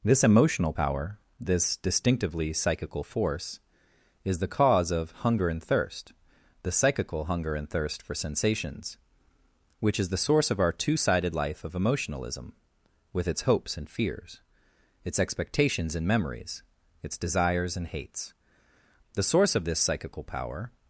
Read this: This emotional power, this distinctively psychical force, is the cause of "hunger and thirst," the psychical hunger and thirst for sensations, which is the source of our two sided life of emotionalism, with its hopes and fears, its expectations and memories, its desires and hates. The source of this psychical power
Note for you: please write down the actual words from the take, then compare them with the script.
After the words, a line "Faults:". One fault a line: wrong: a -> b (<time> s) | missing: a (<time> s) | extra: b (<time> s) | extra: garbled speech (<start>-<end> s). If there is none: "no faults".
This emotional power, this distinctively psychical force, is the cause of "hunger and thirst," the psychical hunger and thirst for sensations, which is the source of our two sided life of emotionalism, with its hopes and fears, its expectations and memories, its desires and hates. The source of this psychical power
Faults:
no faults